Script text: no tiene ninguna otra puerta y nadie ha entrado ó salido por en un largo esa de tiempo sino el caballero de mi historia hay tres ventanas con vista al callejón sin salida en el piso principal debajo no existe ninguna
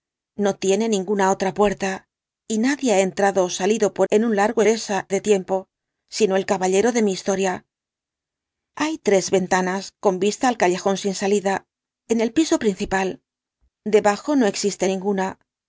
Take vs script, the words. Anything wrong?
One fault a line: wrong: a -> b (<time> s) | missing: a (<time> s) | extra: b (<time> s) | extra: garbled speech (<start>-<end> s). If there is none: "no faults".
no faults